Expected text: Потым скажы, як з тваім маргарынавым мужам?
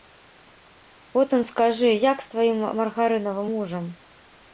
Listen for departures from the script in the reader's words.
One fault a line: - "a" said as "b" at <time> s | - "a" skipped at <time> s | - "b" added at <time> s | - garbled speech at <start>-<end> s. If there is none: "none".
none